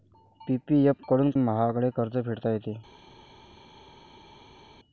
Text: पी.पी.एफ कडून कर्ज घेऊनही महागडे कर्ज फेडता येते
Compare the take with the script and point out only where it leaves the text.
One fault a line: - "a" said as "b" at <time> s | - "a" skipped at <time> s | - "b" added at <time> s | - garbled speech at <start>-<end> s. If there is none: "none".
- "कर्ज घेऊनही" skipped at 1.3 s